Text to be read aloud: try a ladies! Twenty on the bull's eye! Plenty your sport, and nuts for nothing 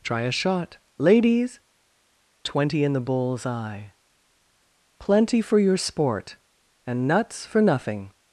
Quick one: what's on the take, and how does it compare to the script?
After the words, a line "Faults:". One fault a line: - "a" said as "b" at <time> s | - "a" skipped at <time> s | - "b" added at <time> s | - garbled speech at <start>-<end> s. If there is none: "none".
try a shot, ladies! Twenty in the bull's eye! Plenty for your sport, and nuts for nothing
Faults:
- "shot" added at 0.3 s
- "on" said as "in" at 2.8 s
- "for" added at 5.4 s